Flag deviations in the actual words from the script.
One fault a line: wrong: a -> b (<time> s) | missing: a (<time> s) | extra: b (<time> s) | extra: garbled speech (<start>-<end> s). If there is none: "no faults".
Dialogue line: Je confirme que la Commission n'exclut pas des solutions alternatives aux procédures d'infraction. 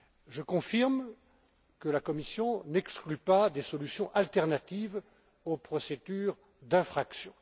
no faults